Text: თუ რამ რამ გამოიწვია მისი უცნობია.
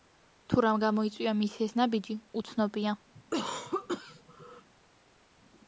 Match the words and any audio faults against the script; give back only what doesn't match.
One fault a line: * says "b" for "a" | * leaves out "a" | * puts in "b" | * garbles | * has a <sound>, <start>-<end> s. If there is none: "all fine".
* leaves out "რამ"
* puts in "ეს ნაბიჯი"
* has a cough, 3.1-4.7 s